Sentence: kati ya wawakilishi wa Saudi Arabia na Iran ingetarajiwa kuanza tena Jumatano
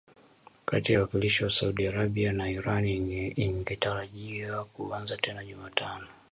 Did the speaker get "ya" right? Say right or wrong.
right